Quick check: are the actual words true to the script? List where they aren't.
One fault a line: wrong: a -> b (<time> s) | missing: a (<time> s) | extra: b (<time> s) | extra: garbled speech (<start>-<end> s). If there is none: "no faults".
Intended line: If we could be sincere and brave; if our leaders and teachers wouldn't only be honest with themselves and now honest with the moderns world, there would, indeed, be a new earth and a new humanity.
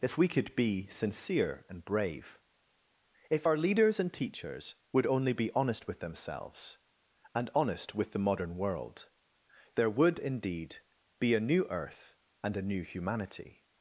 wrong: wouldn't -> would (4.9 s)
missing: now (7.5 s)
wrong: moderns -> modern (8.2 s)